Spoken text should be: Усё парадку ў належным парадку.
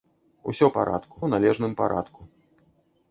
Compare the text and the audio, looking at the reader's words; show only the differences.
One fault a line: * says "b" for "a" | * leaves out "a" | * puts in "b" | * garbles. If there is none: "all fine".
all fine